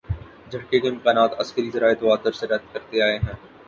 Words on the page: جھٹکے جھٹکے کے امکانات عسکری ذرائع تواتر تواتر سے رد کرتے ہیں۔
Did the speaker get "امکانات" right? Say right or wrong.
right